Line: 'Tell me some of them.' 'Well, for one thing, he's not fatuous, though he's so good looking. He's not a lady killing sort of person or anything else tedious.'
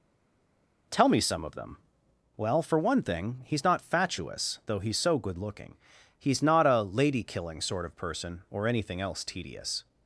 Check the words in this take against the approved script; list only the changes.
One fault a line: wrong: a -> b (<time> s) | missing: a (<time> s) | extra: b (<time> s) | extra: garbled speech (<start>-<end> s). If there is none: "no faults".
no faults